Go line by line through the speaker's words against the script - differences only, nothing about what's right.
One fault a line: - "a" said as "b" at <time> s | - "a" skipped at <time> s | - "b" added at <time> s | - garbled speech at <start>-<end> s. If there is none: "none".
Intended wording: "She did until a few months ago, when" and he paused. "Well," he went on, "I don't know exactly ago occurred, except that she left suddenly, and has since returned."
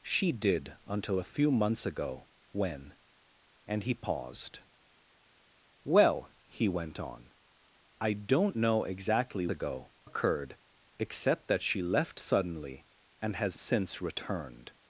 none